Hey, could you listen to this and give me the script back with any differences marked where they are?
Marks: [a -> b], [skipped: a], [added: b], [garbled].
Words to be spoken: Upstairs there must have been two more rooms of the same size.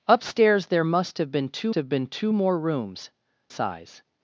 Upstairs there must have been two [more rooms of the same -> have been two more rooms] size.